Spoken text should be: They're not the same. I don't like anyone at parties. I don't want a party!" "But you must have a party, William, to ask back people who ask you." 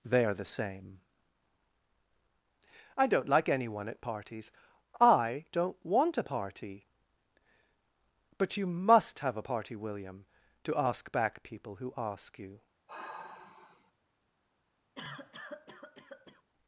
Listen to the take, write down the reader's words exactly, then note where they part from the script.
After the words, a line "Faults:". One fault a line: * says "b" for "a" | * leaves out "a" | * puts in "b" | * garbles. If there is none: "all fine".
They're the same. I don't like anyone at parties. I don't want a party!" "But you must have a party, William, to ask back people who ask you."
Faults:
* leaves out "not"